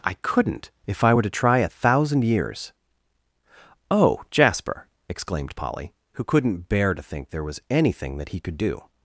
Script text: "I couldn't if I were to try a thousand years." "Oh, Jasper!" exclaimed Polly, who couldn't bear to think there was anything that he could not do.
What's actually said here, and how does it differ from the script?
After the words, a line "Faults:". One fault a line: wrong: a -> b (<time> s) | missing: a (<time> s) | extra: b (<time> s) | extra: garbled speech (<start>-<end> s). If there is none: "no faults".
"I couldn't if I were to try a thousand years." "Oh, Jasper!" exclaimed Polly, who couldn't bear to think there was anything that he could do.
Faults:
missing: not (8.6 s)